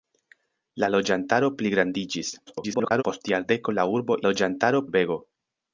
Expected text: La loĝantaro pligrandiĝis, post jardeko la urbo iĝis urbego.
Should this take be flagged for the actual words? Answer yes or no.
yes